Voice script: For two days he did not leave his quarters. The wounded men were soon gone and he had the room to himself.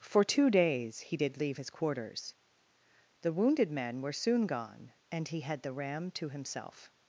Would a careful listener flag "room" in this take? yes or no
yes